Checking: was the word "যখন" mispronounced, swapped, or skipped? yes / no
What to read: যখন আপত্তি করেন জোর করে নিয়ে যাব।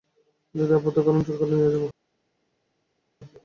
yes